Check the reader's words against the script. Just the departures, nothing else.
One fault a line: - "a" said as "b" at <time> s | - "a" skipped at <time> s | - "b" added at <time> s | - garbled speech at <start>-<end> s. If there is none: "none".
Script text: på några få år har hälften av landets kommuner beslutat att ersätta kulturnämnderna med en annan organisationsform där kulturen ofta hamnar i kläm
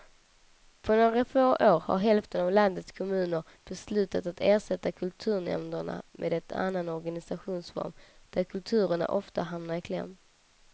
none